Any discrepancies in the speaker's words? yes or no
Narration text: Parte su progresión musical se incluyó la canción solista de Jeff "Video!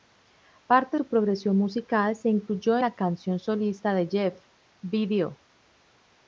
no